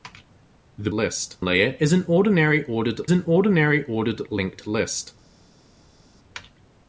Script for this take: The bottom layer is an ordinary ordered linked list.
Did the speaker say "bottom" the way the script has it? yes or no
no